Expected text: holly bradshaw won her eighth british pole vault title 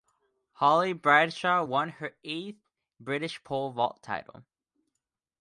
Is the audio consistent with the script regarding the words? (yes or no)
yes